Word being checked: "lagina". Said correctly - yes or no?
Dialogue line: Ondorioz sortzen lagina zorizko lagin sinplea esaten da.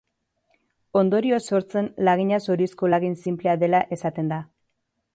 yes